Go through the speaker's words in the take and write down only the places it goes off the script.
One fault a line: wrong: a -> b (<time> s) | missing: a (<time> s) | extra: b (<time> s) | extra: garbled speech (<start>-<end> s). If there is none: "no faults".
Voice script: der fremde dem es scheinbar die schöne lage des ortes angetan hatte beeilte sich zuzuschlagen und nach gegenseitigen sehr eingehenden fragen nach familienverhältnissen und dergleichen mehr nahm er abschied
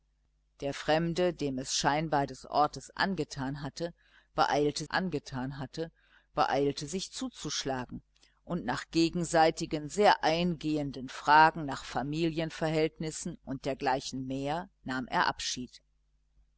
wrong: die schöne lage des ortes -> des ortes angetan hatte beeilte (2.2 s)